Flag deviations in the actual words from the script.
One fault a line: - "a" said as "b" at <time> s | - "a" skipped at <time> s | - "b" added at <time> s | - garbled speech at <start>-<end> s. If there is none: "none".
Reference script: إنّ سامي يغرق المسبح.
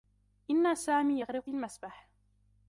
none